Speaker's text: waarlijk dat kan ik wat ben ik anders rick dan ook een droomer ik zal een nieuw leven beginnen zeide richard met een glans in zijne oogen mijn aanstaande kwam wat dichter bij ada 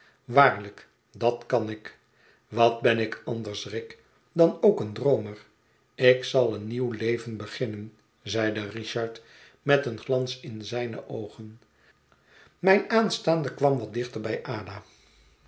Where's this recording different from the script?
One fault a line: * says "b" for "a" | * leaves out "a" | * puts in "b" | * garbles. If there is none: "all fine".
all fine